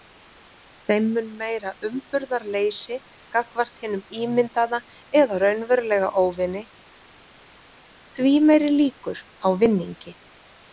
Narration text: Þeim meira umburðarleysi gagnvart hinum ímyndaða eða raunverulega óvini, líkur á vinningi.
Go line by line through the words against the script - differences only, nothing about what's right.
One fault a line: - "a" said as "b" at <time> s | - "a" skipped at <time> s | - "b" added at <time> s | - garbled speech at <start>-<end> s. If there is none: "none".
- "mun" added at 1.2 s
- "því meiri" added at 8.2 s